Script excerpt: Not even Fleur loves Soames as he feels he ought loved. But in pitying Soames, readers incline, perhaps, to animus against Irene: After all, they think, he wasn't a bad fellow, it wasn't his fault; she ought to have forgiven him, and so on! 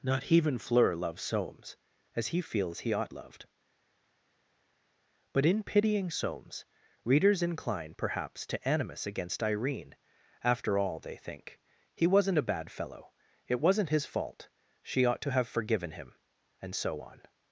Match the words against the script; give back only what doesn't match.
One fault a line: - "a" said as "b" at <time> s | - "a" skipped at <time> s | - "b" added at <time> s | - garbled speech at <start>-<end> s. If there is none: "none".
none